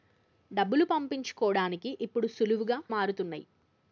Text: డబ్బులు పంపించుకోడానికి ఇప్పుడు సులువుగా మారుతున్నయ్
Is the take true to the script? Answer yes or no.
yes